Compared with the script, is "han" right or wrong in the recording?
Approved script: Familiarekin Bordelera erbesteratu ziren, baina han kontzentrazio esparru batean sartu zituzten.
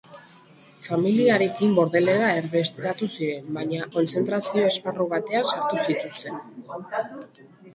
wrong